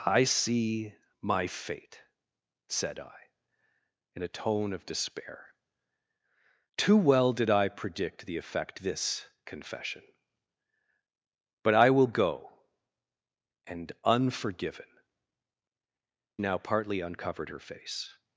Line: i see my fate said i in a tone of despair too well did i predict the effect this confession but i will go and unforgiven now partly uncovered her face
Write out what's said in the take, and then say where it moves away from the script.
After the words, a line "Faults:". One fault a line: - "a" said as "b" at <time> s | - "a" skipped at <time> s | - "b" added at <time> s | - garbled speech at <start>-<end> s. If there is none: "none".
i see my fate said i in a tone of despair too well did i predict the effect this confession but i will go and unforgiven now partly uncovered her face
Faults:
none